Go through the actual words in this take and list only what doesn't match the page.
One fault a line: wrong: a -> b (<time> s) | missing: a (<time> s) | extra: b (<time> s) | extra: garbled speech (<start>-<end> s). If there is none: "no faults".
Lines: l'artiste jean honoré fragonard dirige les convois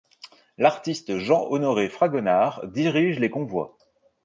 no faults